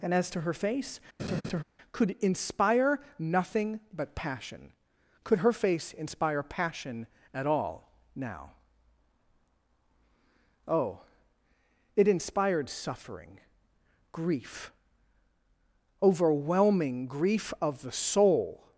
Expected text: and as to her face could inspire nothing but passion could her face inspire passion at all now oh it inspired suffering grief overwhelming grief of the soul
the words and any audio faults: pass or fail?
fail